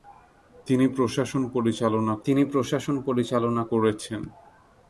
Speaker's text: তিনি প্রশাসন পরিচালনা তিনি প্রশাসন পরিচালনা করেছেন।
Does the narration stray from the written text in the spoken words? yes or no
no